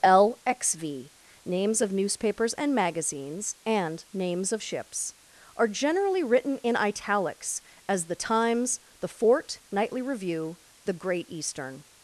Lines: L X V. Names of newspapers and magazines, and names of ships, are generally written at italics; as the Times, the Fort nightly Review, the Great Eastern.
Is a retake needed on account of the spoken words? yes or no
yes